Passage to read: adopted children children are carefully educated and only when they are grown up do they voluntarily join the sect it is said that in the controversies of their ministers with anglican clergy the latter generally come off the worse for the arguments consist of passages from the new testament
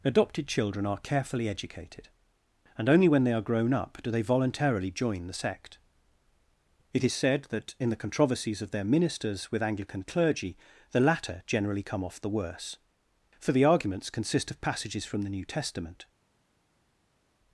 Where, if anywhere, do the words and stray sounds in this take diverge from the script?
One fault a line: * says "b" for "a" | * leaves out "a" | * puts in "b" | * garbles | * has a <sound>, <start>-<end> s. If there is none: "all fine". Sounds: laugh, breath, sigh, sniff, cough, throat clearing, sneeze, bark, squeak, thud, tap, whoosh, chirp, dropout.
* leaves out "children"